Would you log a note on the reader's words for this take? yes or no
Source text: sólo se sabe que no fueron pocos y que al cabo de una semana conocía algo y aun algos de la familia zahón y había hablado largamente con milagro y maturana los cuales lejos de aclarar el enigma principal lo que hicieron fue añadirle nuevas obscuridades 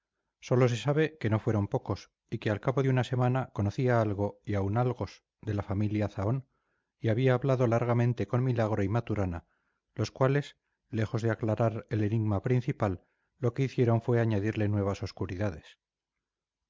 no